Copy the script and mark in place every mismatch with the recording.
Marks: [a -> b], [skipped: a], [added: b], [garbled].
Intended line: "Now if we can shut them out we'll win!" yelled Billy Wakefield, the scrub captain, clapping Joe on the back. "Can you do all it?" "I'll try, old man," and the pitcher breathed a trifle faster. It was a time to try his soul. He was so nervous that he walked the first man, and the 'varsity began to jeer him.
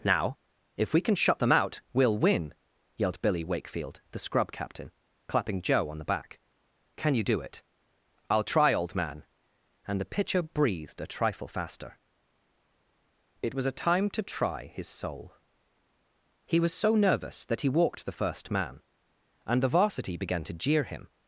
"Now if we can shut them out we'll win!" yelled Billy Wakefield, the scrub captain, clapping Joe on the back. "Can you do [skipped: all] it?" "I'll try, old man," and the pitcher breathed a trifle faster. It was a time to try his soul. He was so nervous that he walked the first man, and the 'varsity began to jeer him.